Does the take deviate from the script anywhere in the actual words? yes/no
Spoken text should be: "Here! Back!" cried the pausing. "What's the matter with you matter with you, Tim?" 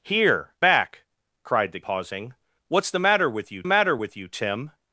no